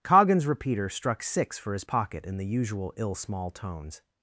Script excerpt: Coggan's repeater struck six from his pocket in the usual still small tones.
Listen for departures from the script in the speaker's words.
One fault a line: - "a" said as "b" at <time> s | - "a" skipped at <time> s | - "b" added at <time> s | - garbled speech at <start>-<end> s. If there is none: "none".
- "from" said as "for" at 1.6 s
- "still" said as "ill" at 3.0 s